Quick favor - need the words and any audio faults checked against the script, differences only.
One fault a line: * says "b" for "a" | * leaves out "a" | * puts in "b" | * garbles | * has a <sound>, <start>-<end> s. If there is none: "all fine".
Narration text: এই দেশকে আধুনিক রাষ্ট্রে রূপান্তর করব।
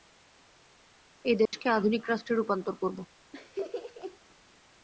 * has a dropout, 1.5-1.5 s
* has a laugh, 3.3-4.2 s